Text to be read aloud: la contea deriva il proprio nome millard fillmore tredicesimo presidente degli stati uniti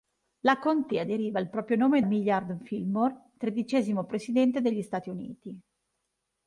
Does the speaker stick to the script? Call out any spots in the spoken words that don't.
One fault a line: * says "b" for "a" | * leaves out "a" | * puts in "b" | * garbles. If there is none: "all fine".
all fine